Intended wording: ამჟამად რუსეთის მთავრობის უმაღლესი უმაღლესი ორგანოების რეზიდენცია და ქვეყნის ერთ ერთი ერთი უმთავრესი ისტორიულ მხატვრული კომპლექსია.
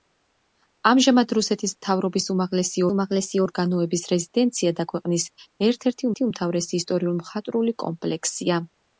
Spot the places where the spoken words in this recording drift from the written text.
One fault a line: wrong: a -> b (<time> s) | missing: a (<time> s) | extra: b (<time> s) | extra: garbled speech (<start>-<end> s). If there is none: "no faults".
no faults